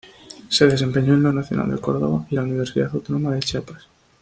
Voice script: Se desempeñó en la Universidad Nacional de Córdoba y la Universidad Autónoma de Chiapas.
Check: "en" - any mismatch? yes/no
no